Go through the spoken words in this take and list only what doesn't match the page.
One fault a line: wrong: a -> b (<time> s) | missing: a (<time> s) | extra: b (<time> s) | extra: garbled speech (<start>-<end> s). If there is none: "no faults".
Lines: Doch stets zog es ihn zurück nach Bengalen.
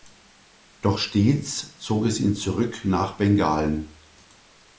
no faults